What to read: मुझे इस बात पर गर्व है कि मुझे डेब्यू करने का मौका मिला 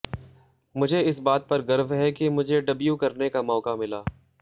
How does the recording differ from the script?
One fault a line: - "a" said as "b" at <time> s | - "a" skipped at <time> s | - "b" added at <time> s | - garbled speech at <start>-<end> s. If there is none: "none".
none